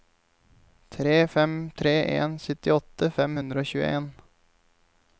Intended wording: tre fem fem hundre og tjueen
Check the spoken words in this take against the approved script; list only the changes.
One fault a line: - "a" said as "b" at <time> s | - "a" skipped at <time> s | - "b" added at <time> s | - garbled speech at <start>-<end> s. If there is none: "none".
- "tre en syttiåtte" added at 1.8 s